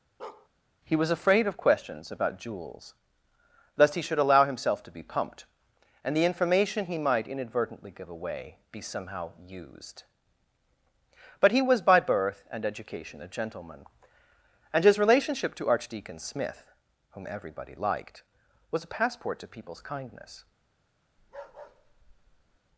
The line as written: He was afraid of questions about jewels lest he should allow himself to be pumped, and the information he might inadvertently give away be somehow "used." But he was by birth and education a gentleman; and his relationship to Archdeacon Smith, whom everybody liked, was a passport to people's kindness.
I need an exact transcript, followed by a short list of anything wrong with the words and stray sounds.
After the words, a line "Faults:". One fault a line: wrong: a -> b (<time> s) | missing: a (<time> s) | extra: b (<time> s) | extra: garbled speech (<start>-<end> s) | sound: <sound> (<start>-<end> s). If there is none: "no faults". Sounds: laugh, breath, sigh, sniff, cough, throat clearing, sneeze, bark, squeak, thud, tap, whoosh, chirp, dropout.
He was afraid of questions about jewels lest he should allow himself to be pumped, and the information he might inadvertently give away be somehow "used." But he was by birth and education a gentleman; and his relationship to Archdeacon Smith, whom everybody liked, was a passport to people's kindness.
Faults:
sound: bark (0.2-0.5 s)
sound: bark (21.2-22.6 s)